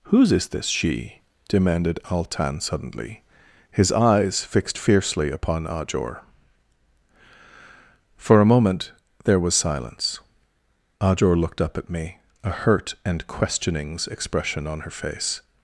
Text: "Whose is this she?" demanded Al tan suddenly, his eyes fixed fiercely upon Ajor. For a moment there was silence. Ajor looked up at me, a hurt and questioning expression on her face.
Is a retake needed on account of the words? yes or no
yes